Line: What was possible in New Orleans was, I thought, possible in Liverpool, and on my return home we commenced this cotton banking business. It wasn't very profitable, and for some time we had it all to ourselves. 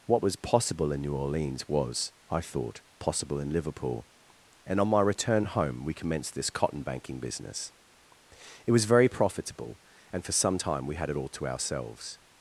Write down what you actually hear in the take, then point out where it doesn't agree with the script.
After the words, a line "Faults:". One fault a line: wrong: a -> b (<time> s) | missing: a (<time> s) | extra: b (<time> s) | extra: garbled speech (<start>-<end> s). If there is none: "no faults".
What was possible in New Orleans was, I thought, possible in Liverpool, and on my return home we commenced this cotton banking business. It was very profitable, and for some time we had it all to ourselves.
Faults:
wrong: wasn't -> was (8.7 s)